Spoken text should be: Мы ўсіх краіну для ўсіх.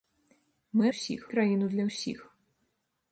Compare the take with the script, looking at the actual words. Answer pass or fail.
pass